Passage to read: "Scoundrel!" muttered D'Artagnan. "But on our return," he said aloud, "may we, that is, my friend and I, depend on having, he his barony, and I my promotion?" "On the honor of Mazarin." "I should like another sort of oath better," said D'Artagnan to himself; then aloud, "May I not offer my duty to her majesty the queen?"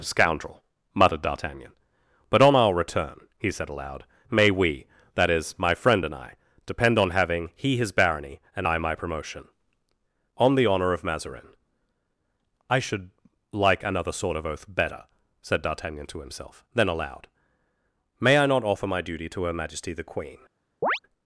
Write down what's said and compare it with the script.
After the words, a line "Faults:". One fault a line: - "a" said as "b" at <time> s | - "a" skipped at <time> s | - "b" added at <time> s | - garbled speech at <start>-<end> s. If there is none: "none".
"Scoundrel!" muttered D'Artagnan. "But on our return," he said aloud, "may we, that is, my friend and I, depend on having, he his barony, and I my promotion?" "On the honor of Mazarin." "I should like another sort of oath better," said D'Artagnan to himself; then aloud, "May I not offer my duty to her majesty the queen?"
Faults:
none